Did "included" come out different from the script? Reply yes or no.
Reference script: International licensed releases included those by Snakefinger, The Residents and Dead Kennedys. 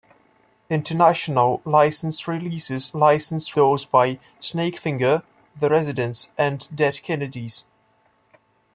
yes